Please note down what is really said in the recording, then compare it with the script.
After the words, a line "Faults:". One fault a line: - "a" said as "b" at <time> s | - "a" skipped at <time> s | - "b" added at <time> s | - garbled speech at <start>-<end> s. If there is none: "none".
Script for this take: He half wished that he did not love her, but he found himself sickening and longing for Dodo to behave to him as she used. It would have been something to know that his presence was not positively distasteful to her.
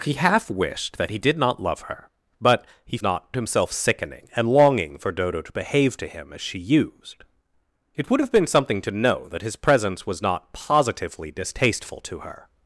He half wished that he did not love her, but he not himself sickening and longing for Dodo to behave to him as she used. It would have been something to know that his presence was not positively distasteful to her.
Faults:
- "found" said as "not" at 3.0 s